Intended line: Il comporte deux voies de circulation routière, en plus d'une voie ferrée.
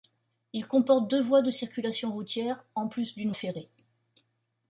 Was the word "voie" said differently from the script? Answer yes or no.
yes